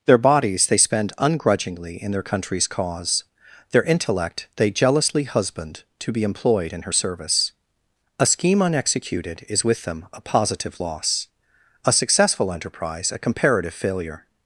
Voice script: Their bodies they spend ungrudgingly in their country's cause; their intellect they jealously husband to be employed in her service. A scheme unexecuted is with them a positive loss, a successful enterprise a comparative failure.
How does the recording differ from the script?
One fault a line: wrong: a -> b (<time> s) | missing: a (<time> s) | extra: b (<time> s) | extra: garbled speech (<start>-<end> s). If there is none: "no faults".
no faults